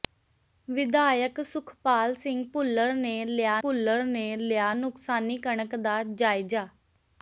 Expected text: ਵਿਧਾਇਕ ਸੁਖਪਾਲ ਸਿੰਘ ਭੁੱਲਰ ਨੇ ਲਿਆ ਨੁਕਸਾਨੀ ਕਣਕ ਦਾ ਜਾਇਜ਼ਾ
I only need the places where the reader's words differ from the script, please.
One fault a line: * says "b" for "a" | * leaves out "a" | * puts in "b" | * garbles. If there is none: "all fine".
* puts in "ਭੁੱਲਰ ਨੇ ਲਿਆ"